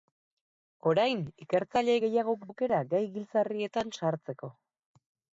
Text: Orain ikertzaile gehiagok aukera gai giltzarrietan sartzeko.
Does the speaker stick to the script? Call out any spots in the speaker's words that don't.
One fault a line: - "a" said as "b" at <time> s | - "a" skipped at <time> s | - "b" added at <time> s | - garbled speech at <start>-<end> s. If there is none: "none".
none